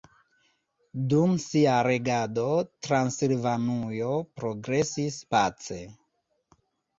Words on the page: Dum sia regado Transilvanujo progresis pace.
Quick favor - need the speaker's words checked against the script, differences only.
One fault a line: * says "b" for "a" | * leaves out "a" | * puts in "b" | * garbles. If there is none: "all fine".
all fine